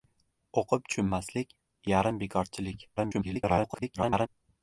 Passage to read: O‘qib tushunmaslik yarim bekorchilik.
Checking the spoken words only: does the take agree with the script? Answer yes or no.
no